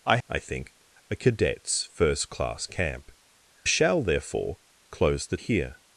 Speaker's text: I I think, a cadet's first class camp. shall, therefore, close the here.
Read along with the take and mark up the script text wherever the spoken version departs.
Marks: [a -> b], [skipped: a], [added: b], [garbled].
I I think, a cadet's first class camp. shall, therefore, close the here.